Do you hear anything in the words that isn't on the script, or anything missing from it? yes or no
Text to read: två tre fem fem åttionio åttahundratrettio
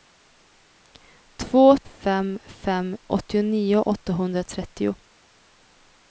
yes